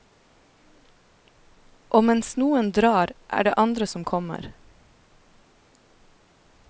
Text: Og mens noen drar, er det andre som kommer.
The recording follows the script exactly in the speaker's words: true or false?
true